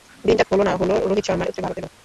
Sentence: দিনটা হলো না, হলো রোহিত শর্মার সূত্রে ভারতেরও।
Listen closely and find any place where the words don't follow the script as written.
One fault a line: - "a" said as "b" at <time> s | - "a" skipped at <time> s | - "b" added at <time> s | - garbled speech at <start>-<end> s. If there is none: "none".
none